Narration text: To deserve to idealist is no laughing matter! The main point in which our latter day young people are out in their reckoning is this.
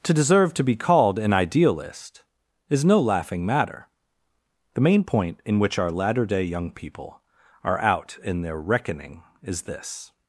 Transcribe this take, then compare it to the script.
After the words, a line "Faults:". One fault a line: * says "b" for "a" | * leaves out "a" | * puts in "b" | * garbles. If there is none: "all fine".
To deserve to be called an idealist is no laughing matter! The main point in which our latter day young people are out in their reckoning is this.
Faults:
* puts in "be called an"